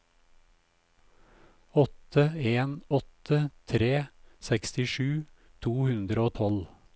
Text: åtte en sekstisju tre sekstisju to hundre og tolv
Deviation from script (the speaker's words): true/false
true